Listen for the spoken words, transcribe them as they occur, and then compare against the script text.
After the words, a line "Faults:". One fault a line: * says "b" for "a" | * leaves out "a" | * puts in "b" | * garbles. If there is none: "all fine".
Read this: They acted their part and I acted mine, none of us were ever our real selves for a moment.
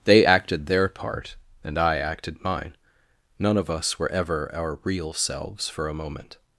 They acted their part and I acted mine, none of us were ever our real selves for a moment.
Faults:
all fine